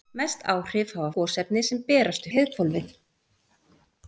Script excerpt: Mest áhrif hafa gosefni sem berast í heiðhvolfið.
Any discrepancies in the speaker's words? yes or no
no